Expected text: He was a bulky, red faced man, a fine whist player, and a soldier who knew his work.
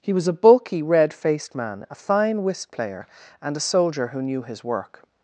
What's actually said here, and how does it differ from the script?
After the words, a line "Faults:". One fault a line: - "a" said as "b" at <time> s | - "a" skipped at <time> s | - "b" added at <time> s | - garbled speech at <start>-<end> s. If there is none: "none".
He was a bulky, red faced man, a fine whist player, and a soldier who knew his work.
Faults:
none